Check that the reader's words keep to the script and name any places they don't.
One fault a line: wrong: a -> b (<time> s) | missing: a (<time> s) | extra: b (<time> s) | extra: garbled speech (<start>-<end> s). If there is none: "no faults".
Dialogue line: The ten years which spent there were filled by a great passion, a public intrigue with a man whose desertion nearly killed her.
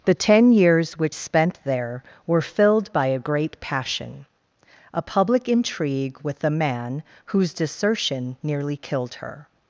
no faults